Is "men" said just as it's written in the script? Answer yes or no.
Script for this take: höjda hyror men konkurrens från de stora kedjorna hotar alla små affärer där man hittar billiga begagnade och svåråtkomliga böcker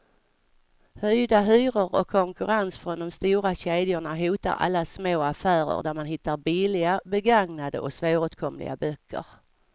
no